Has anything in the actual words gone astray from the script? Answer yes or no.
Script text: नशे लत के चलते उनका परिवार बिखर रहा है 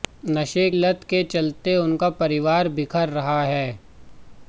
no